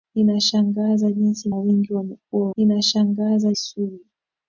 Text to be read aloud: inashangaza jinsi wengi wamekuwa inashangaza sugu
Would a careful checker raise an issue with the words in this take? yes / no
no